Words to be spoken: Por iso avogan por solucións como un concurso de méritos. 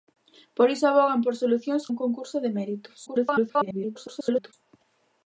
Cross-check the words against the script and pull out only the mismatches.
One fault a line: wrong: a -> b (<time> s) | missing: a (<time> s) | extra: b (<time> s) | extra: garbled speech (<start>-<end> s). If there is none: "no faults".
missing: como (1.8 s)
extra: garbled speech (3.1-4.5 s)